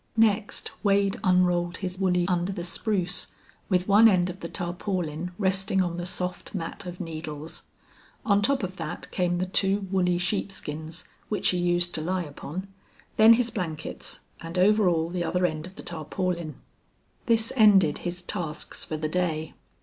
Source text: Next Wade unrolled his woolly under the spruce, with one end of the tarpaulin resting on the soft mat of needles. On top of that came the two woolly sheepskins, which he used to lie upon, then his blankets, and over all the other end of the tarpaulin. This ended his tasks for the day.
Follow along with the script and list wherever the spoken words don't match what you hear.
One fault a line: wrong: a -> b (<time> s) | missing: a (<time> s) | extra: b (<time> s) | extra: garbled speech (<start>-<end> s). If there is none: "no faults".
no faults